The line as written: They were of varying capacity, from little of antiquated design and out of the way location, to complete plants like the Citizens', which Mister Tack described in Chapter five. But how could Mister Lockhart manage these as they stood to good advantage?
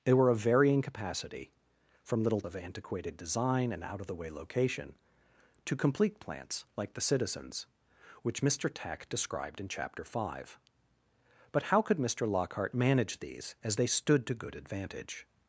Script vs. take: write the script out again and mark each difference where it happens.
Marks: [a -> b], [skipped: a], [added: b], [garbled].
They were of varying capacity, from little of antiquated design and out of the way location, to complete plants like the Citizens', which Mister Tack described in Chapter five. But how could Mister Lockhart manage these as they stood to good advantage?